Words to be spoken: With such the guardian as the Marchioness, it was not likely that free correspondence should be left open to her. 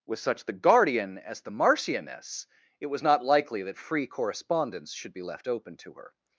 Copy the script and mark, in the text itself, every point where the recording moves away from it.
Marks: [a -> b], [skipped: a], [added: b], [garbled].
With such the guardian as the Marchioness, it was not likely that free correspondence should be left open to her.